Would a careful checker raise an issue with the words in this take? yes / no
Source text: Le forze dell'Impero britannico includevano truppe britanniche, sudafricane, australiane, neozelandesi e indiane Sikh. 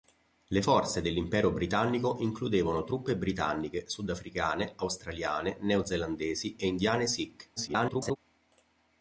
yes